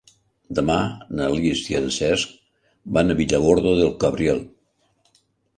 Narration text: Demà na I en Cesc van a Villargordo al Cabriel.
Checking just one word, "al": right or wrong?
wrong